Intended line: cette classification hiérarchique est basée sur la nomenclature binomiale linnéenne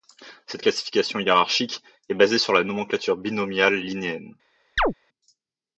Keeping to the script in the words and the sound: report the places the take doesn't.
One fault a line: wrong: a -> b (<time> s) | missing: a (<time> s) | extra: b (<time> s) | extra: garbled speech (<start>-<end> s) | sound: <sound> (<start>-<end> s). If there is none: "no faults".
sound: chirp (4.8-4.9 s)